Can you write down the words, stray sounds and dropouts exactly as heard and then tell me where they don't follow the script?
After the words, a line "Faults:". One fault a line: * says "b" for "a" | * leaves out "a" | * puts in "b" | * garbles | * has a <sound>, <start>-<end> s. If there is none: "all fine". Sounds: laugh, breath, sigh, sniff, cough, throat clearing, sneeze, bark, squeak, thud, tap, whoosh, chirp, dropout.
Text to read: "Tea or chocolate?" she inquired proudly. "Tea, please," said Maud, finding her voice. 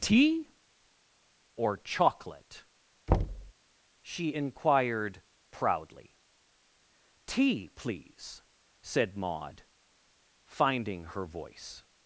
"Tea or chocolate?" she inquired proudly. "Tea, please," said Maud, finding her voice.
Faults:
* has a thud, 3.1-3.5 s